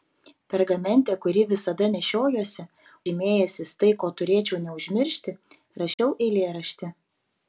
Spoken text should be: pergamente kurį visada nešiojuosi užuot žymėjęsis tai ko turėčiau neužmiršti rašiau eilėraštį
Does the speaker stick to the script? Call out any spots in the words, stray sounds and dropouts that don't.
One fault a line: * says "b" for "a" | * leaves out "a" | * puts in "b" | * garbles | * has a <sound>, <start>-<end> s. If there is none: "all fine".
* leaves out "užuot"
* has a dropout, 5.9-6.0 s